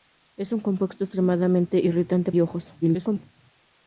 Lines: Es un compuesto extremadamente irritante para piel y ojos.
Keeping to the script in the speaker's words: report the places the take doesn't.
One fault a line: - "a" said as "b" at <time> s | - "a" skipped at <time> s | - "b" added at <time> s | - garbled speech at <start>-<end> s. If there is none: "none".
- "para piel" skipped at 2.3 s
- garbled speech at 2.8-3.2 s